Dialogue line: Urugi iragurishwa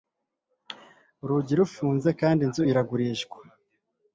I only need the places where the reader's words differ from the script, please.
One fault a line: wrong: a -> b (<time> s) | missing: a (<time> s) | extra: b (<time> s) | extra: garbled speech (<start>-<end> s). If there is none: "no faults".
extra: rufunze kandi inzu (1.6 s)